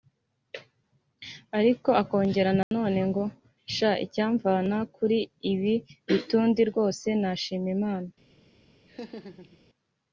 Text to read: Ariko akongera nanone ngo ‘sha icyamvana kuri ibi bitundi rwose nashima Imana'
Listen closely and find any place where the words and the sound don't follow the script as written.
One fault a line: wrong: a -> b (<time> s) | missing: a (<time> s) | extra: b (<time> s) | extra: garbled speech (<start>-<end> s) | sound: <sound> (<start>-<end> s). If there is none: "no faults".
sound: dropout (2.6-2.7 s)
sound: laugh (8.9-9.6 s)